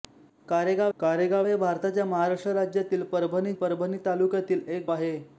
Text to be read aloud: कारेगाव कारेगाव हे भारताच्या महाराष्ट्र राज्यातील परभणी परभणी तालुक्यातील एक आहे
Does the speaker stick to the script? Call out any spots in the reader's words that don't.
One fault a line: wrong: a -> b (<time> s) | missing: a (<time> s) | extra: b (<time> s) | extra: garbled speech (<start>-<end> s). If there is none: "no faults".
no faults